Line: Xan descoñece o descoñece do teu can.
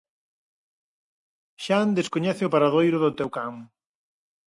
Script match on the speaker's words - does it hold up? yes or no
no